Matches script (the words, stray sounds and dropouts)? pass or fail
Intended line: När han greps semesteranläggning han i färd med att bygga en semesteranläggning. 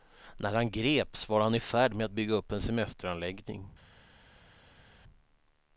fail